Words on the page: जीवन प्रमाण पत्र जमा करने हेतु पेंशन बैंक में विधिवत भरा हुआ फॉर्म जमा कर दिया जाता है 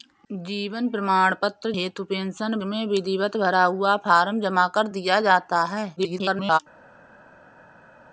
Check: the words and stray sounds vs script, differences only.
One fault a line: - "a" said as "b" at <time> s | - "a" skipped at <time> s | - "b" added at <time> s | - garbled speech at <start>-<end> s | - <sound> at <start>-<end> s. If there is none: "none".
- "जमा करने" skipped at 1.7 s
- "बैंक" skipped at 2.6 s
- garbled speech at 6.0-6.6 s